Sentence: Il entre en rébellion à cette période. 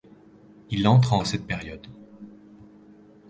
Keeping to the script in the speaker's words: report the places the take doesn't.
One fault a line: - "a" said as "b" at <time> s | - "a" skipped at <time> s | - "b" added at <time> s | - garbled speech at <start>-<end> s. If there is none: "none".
- "rébellion" skipped at 1.2 s